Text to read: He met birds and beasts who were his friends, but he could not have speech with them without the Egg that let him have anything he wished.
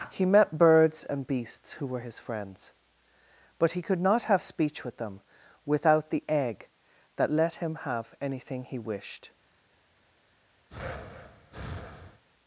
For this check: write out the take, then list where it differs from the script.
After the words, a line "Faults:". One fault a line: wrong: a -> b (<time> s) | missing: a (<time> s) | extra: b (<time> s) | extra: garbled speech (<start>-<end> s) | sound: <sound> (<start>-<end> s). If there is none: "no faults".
He met birds and beasts who were his friends, but he could not have speech with them without the Egg that let him have anything he wished.
Faults:
sound: breath (10.7-12.2 s)